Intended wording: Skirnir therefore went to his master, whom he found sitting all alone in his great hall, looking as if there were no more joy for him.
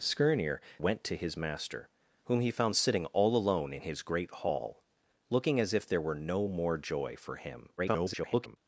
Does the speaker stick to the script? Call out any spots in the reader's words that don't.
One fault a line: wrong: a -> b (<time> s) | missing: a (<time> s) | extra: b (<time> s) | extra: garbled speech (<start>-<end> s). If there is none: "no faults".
missing: therefore (0.6 s)
extra: garbled speech (7.8-8.6 s)